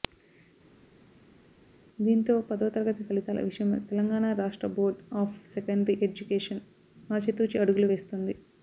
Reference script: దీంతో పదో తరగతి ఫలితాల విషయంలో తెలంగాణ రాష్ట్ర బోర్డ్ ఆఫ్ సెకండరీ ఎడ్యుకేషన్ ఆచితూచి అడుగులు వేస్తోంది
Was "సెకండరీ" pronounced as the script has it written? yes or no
yes